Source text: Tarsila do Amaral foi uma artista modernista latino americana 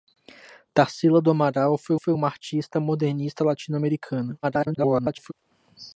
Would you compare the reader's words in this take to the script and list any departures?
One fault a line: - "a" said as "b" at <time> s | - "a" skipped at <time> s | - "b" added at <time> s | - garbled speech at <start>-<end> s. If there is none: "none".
- "foi" added at 2.0 s
- garbled speech at 4.4-5.3 s